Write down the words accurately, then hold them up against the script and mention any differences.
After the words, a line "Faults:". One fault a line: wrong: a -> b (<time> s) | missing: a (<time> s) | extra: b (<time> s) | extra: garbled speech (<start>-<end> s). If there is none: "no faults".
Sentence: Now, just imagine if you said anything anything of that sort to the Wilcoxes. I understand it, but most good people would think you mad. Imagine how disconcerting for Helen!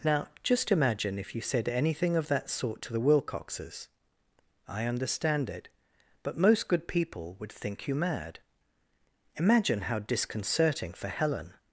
Now, just imagine if you said anything of that sort to the Wilcoxes. I understand it, but most good people would think you mad. Imagine how disconcerting for Helen!
Faults:
missing: anything (2.1 s)